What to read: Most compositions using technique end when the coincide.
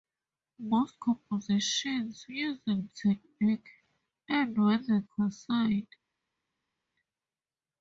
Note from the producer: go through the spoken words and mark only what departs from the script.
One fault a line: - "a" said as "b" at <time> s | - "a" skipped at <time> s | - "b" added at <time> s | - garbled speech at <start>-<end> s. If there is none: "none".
none